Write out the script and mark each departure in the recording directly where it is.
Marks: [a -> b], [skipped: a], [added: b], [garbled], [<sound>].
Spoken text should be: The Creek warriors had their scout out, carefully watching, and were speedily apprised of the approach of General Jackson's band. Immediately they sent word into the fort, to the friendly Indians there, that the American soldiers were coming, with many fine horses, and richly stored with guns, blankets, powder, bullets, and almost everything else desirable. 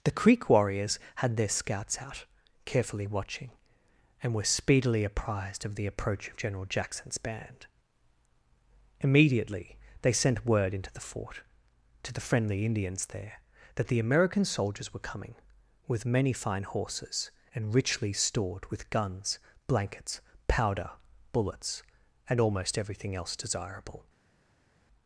The Creek warriors had their [scout -> scouts] out, carefully watching, and were speedily apprised of the approach of General Jackson's band. Immediately they sent word into the fort, to the friendly Indians there, that the American soldiers were coming, with many fine horses, and richly stored with guns, blankets, powder, bullets, and almost everything else desirable.